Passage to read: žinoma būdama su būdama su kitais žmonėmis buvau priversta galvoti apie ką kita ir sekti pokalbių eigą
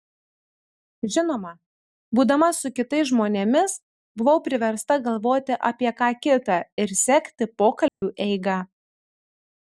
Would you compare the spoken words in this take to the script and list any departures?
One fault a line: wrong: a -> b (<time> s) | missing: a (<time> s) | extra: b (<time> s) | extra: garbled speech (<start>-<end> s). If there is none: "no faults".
missing: būdama su (2.7 s)